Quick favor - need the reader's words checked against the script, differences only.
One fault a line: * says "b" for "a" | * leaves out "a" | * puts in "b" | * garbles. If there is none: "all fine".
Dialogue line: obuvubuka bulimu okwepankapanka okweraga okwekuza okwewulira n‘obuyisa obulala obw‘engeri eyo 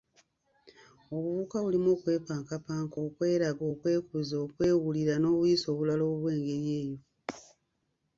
all fine